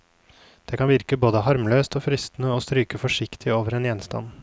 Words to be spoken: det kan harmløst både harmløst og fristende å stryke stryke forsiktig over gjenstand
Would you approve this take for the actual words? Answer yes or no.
no